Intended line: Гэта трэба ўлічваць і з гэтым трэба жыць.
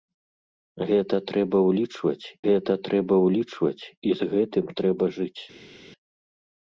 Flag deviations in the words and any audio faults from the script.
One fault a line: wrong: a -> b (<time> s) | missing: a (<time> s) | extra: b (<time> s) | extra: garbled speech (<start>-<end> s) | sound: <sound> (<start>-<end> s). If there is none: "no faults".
extra: гэта трэба ўлічваць (2.5 s)